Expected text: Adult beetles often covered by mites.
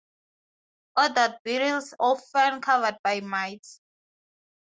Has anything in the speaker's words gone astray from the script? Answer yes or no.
no